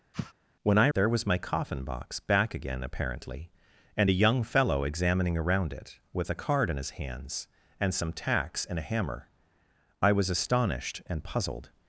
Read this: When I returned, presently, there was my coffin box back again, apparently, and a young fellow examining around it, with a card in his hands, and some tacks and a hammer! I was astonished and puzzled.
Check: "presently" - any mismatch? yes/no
yes